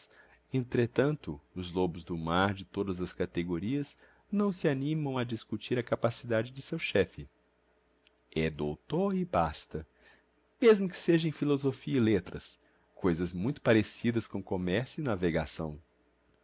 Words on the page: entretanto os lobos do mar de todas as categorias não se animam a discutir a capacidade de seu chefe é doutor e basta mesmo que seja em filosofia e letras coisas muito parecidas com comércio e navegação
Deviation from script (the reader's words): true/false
false